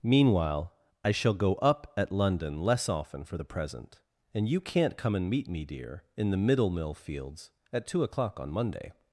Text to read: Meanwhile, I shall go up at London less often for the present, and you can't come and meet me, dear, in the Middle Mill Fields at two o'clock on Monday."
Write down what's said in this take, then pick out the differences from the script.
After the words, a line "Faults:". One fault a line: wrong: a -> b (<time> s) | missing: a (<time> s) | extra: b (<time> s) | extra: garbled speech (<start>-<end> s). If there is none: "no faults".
Meanwhile, I shall go up at London less often for the present, and you can't come and meet me, dear, in the Middle Mill Fields at two o'clock on Monday."
Faults:
no faults